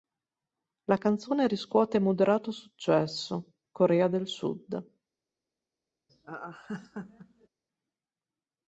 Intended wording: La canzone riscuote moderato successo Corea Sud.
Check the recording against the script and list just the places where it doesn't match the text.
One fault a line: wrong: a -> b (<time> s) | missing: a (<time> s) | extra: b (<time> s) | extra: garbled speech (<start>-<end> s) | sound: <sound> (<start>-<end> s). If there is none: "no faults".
extra: del (4.1 s)
sound: laugh (6.1-7.5 s)